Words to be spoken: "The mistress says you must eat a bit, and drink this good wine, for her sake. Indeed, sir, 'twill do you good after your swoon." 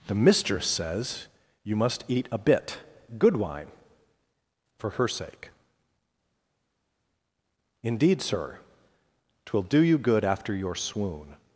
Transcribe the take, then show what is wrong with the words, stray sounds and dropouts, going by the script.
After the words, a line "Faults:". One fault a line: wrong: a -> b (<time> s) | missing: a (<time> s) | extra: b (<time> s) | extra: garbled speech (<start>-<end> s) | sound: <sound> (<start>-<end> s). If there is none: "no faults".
"The mistress says you must eat a bit, good wine, for her sake. Indeed, sir, 'twill do you good after your swoon."
Faults:
missing: and drink this (2.8 s)